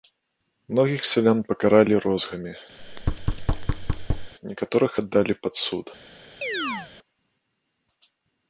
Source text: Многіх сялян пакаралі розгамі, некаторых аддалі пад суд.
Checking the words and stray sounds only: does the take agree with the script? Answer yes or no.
no